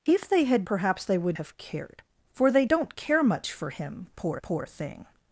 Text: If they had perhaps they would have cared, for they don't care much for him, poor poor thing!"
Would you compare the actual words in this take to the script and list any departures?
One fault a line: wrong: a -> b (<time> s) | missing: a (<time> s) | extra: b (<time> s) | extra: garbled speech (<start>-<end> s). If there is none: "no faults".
no faults